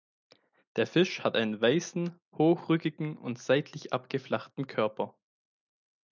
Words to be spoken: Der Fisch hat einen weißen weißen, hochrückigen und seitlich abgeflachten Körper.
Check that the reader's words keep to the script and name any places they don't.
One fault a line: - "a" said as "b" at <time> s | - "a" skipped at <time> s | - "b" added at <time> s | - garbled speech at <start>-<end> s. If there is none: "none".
- "weißen" skipped at 2.2 s